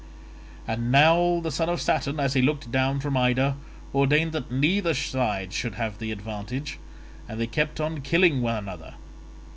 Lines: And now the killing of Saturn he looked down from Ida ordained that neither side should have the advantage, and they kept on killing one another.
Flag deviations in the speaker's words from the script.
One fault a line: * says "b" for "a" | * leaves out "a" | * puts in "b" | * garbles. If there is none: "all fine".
* says "son" for "killing"
* puts in "as"